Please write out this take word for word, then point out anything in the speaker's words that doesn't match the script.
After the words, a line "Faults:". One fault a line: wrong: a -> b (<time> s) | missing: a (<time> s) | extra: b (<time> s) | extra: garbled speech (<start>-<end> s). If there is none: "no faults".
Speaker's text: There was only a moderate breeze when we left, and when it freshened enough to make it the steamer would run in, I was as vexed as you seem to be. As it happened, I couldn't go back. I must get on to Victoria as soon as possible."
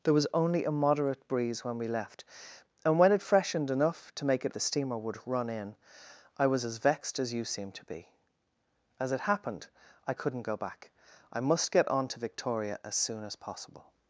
There was only a moderate breeze when we left, and when it freshened enough to make it the steamer would run in, I was as vexed as you seem to be. As it happened, I couldn't go back. I must get on to Victoria as soon as possible."
Faults:
no faults